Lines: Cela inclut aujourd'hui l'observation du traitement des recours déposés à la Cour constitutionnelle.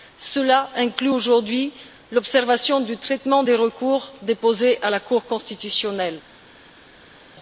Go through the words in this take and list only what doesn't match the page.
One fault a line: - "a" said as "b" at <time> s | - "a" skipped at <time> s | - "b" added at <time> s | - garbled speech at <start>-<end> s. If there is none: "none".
none